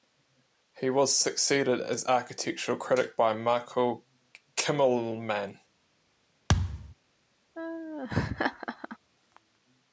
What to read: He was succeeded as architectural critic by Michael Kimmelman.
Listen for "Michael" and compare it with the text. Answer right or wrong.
right